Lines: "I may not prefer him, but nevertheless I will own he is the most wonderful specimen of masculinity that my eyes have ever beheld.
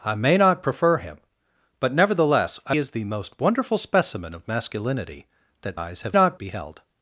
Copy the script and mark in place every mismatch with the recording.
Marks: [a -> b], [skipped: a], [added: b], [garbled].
"I may not prefer him, but nevertheless I [skipped: will own he] is the most wonderful specimen of masculinity that [skipped: my] eyes have [ever -> not] beheld.